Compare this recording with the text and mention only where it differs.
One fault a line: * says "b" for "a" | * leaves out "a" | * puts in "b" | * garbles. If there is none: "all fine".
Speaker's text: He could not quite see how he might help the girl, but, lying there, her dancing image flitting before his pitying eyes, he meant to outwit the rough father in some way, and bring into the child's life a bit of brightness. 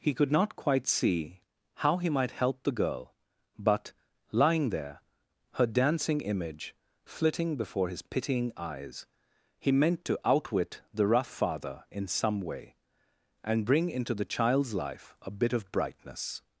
all fine